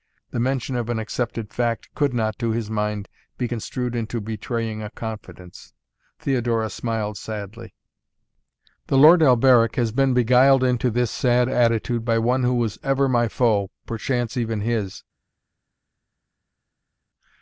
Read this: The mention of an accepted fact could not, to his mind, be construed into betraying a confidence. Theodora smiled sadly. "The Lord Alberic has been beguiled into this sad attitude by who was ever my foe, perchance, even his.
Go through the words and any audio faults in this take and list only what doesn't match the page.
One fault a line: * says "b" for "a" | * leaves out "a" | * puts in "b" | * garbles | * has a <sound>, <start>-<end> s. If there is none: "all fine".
* puts in "one"